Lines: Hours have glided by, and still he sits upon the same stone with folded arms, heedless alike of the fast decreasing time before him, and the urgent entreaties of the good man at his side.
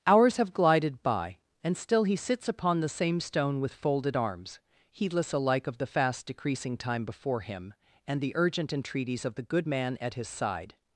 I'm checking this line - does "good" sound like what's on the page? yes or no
yes